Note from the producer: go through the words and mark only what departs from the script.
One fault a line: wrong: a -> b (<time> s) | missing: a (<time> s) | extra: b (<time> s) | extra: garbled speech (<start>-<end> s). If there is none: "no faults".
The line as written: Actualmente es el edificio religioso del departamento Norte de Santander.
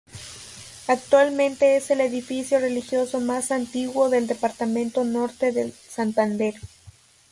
extra: más antiguo (3.2 s)